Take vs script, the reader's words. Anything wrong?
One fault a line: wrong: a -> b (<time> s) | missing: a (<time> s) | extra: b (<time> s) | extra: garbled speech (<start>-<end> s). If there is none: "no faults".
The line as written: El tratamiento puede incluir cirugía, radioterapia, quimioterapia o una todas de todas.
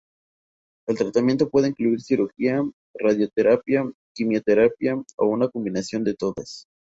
wrong: todas -> combinación (5.5 s)